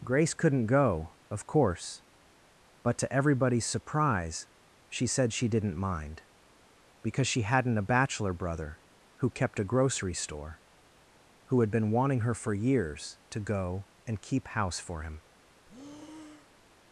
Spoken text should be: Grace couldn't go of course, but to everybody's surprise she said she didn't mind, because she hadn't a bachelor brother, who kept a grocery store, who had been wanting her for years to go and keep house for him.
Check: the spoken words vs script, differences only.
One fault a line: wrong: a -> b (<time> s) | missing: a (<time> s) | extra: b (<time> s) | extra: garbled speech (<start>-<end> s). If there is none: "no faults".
no faults